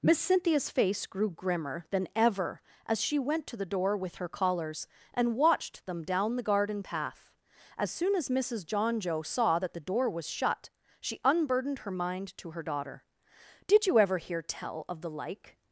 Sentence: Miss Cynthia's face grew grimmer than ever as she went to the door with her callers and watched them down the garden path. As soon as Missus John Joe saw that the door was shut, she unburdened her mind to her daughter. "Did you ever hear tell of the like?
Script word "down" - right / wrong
right